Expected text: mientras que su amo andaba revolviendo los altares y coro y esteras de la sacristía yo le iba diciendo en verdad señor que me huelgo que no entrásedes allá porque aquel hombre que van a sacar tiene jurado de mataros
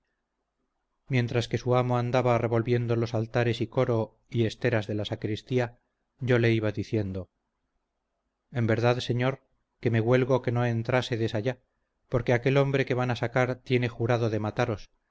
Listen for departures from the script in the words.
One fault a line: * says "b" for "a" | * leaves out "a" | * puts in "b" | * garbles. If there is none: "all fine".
all fine